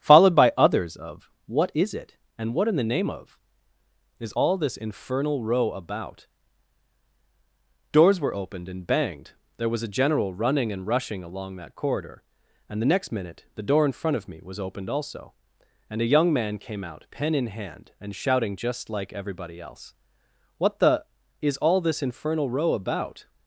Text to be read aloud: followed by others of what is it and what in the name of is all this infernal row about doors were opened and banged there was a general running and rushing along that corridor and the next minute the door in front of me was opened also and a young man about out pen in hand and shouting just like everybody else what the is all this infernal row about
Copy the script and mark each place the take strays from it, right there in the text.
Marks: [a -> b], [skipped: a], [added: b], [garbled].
followed by others of what is it and what in the name of is all this infernal row about doors were opened and banged there was a general running and rushing along that corridor and the next minute the door in front of me was opened also and a young man [about -> came] out pen in hand and shouting just like everybody else what the is all this infernal row about